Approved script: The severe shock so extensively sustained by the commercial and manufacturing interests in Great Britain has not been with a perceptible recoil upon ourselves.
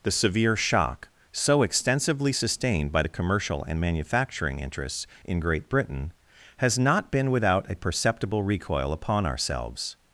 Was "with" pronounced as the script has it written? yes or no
no